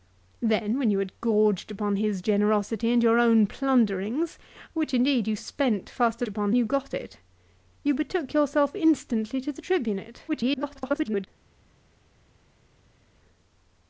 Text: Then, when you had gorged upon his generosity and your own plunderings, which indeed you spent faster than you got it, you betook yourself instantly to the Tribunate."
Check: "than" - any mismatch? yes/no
yes